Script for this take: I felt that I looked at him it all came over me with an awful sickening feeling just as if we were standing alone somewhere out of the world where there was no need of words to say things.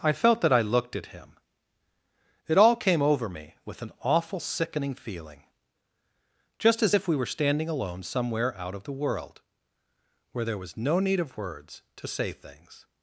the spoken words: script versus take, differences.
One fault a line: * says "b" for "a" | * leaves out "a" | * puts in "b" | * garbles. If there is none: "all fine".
all fine